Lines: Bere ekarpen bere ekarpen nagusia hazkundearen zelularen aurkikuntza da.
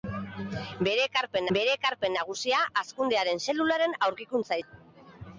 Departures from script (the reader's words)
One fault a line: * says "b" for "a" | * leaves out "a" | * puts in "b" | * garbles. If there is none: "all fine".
all fine